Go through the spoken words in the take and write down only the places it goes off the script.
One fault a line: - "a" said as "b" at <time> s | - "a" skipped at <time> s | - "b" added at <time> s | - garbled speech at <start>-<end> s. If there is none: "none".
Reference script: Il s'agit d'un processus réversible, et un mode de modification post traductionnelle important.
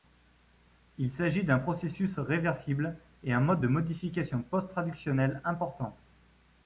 none